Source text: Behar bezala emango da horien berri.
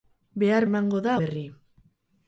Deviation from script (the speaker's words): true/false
true